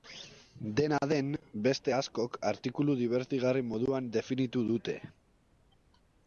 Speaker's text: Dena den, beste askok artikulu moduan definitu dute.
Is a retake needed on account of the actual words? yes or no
yes